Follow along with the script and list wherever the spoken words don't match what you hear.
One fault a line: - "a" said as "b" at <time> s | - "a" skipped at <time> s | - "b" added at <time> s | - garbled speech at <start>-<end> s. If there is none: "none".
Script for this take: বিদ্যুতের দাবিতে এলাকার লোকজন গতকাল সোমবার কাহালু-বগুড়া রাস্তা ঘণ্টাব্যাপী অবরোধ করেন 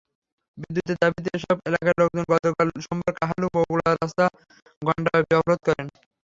- "এসব" added at 1.3 s